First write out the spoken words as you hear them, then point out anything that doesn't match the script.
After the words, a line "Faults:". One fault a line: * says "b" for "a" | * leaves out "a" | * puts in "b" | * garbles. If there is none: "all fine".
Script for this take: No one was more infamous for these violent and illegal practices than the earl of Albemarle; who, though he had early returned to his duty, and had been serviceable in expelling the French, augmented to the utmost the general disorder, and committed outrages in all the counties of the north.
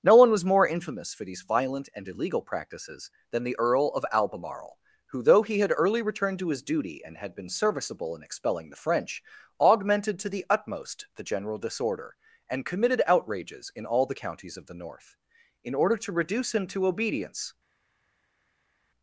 No one was more infamous for these violent and illegal practices than the earl of Albemarle; who, though he had early returned to his duty, and had been serviceable in expelling the French, augmented to the utmost the general disorder, and committed outrages in all the counties of the north. In order to reduce him to obedience
Faults:
* puts in "In order to reduce him to obedience"